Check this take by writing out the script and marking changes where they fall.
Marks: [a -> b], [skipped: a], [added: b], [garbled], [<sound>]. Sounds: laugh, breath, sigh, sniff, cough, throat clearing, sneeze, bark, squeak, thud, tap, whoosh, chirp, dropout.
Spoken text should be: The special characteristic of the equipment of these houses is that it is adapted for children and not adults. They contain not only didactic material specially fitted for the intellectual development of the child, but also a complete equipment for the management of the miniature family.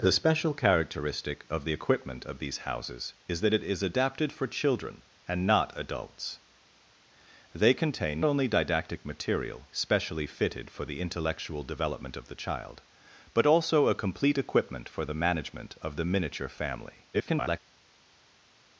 The special characteristic of the equipment of these houses is that it is adapted for children and not adults. They contain [skipped: not] only didactic material specially fitted for the intellectual development of the child, but also a complete equipment for the management of the miniature family. [garbled]